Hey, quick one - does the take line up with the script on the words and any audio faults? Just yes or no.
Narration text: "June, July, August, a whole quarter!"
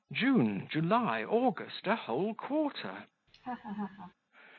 no